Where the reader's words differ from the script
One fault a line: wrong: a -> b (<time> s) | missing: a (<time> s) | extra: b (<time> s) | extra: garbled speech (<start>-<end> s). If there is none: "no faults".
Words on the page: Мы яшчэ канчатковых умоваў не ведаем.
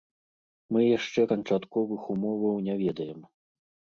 no faults